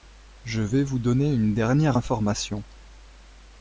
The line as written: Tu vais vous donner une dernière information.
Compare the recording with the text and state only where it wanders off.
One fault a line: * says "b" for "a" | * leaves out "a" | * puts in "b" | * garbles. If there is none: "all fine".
* says "Je" for "Tu"